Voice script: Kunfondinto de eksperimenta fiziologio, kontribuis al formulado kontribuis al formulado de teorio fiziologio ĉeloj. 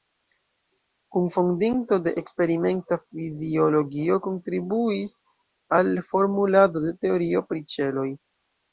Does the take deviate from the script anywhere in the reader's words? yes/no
yes